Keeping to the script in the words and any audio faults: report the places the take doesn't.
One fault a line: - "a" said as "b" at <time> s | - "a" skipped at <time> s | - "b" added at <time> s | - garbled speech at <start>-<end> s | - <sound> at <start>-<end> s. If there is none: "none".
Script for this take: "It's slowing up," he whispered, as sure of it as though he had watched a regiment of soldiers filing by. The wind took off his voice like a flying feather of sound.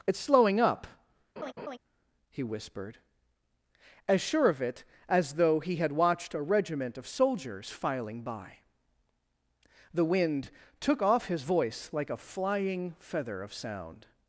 - laugh at 1.4-1.8 s